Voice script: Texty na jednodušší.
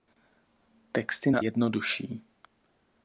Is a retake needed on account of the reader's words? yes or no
no